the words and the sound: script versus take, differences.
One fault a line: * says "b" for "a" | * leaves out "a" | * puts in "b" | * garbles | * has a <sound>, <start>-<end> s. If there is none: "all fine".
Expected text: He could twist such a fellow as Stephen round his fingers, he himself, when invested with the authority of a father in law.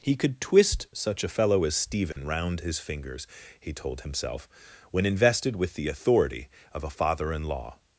* has a dropout, 2.1-2.2 s
* puts in "told"